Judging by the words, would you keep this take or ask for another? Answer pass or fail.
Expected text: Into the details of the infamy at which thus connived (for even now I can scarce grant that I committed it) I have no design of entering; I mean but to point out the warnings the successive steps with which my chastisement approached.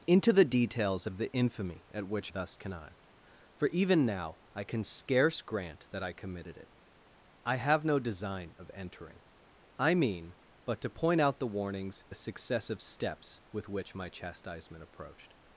pass